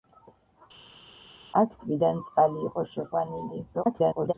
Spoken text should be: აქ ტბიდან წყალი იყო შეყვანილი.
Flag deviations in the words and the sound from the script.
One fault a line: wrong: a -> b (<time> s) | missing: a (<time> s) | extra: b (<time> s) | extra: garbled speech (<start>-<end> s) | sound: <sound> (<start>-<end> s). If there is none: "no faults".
extra: garbled speech (3.7-4.3 s)